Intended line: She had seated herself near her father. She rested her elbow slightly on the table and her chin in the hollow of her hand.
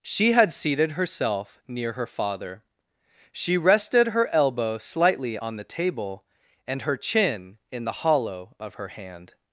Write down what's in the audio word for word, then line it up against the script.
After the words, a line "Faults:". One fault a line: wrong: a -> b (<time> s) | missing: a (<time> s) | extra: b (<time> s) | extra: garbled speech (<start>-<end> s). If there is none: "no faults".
She had seated herself near her father. She rested her elbow slightly on the table and her chin in the hollow of her hand.
Faults:
no faults